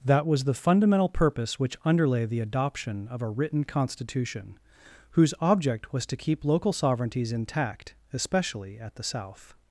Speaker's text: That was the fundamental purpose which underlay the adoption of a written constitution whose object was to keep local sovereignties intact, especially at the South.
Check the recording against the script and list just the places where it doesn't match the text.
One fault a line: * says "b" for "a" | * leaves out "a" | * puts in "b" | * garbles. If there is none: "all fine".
all fine